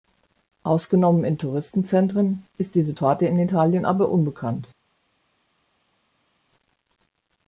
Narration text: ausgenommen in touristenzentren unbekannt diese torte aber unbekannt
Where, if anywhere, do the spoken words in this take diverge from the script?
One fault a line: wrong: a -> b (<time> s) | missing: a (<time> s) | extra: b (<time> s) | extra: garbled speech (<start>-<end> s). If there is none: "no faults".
wrong: unbekannt -> ist (2.6 s)
extra: in italien (3.2 s)